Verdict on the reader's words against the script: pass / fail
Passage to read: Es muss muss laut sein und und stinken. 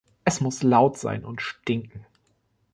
fail